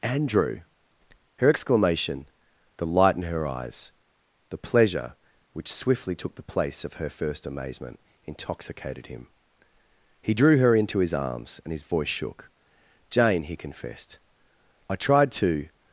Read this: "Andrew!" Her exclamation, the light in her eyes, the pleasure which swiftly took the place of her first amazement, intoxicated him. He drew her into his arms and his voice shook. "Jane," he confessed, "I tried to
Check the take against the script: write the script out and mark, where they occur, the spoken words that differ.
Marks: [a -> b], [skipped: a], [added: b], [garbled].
"Andrew!" Her exclamation, the light in her eyes, the pleasure which swiftly took the place of her first amazement, intoxicated him. He drew her into his arms and his voice shook. "Jane," he confessed, "I tried to